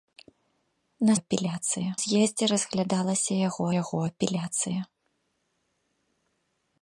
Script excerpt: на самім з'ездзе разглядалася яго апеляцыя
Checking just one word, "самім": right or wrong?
wrong